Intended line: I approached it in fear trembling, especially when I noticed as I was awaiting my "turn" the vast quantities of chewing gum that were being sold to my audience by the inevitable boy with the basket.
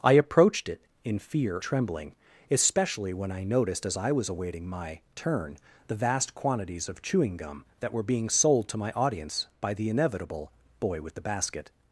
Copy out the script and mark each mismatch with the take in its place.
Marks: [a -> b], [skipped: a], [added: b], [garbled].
I approached it in fear trembling, especially when I noticed as I was awaiting my "turn" the vast quantities of chewing gum that were being sold to my audience by the inevitable boy with the basket.